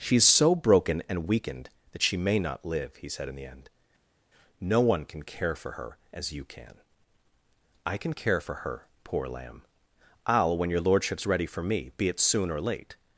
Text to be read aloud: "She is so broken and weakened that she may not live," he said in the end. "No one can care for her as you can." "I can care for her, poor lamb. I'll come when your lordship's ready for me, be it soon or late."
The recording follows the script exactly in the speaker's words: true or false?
false